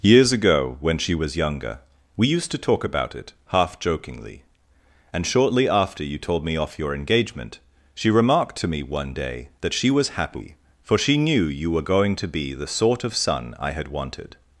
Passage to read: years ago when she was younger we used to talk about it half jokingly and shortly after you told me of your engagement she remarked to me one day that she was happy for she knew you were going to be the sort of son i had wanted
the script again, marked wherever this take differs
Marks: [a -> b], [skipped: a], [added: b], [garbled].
years ago when she was younger we used to talk about it half jokingly and shortly after you told me [of -> off] your engagement she remarked to me one day that she was happy for she knew you were going to be the sort of son i had wanted